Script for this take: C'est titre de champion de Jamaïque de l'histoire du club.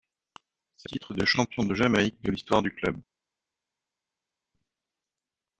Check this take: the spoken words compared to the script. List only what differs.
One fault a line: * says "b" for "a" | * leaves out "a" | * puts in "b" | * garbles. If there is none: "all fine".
all fine